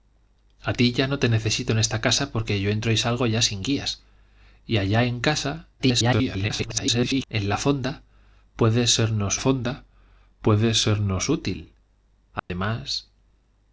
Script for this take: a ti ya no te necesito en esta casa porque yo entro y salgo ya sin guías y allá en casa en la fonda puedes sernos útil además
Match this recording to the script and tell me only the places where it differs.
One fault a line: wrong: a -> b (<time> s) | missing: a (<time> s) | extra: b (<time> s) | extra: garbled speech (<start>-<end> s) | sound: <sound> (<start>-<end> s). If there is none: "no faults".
extra: garbled speech (5.8-7.3 s)
extra: fonda puedes sernos (9.4 s)
sound: dropout (12.4-12.5 s)